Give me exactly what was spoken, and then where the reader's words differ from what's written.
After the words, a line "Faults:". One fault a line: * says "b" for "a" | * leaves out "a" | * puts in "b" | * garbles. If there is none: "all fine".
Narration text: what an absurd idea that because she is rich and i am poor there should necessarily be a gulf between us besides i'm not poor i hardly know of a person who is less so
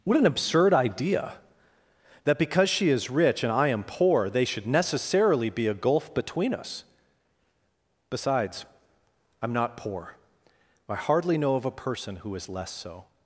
what an absurd idea that because she is rich and i am poor they should necessarily be a gulf between us besides i'm not poor i hardly know of a person who is less so
Faults:
* says "they" for "there"